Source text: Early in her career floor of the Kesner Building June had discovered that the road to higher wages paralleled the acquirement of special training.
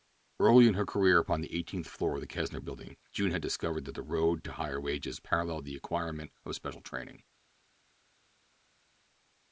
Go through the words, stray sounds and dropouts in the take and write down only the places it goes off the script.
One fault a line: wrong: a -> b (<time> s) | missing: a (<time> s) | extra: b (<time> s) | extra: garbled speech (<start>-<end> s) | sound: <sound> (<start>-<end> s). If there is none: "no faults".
extra: upon the eighteenth (1.2 s)